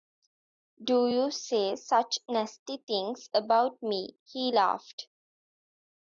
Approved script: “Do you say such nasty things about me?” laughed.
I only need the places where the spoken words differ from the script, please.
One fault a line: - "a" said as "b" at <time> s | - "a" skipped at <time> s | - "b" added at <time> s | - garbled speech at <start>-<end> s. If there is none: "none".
- "he" added at 4.2 s